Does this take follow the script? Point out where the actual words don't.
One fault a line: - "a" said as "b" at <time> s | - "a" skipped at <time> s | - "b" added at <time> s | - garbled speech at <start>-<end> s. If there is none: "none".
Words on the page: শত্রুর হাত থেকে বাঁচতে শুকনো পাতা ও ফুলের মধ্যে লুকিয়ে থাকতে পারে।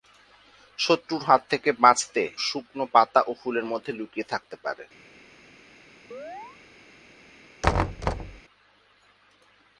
none